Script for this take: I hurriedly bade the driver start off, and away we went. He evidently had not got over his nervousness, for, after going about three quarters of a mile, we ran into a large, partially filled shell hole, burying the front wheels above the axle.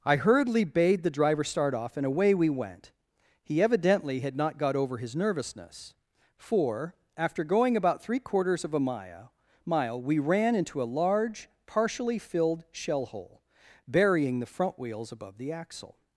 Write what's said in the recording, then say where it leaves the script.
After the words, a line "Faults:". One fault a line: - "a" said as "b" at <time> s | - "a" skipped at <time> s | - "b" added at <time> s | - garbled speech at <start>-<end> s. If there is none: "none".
I hurriedly bade the driver start off, and away we went. He evidently had not got over his nervousness, for, after going about three quarters of a mile mile, we ran into a large, partially filled shell hole, burying the front wheels above the axle.
Faults:
- "mile" added at 9.6 s